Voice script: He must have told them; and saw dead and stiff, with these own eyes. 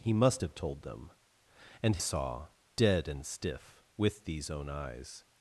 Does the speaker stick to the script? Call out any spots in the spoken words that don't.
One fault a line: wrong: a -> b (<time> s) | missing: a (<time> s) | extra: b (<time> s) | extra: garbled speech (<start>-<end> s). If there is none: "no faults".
no faults